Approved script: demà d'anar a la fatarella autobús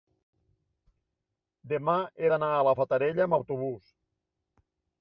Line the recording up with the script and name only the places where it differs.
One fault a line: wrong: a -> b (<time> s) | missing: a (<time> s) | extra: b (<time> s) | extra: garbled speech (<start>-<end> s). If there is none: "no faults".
extra: he (2.2 s)
extra: amb (3.3 s)